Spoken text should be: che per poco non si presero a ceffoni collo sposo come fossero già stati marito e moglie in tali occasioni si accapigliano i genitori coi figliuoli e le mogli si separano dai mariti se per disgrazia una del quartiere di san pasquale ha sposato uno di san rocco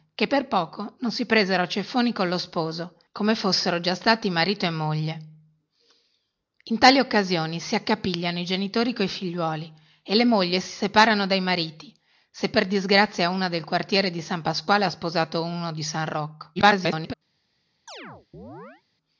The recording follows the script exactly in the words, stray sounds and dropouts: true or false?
false